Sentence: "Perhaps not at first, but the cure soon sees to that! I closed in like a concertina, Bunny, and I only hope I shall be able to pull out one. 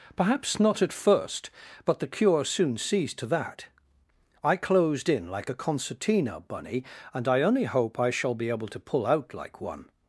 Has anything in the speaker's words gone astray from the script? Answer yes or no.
yes